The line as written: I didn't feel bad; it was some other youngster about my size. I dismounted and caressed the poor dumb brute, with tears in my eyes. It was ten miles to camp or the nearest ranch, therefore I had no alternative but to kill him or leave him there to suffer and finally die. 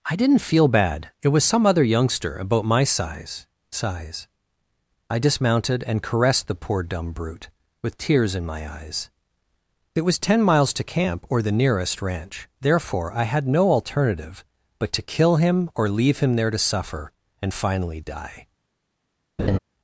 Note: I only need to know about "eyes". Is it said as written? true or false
true